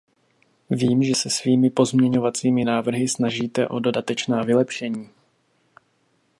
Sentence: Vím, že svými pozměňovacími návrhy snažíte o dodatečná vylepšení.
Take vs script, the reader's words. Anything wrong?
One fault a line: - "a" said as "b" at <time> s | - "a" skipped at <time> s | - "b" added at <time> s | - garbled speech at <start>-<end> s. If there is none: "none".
- "se" added at 1.1 s